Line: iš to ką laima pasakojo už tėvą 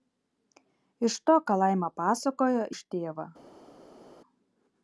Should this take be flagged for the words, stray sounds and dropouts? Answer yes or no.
no